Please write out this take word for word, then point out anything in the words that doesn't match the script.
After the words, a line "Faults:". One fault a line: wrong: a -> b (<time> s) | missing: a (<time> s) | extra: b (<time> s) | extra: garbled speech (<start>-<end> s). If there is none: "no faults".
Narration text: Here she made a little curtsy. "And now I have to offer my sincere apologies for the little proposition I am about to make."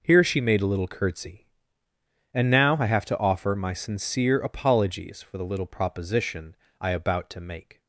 Here she made a little curtsy. "And now I have to offer my sincere apologies for the little proposition I about to make."
Faults:
missing: am (6.9 s)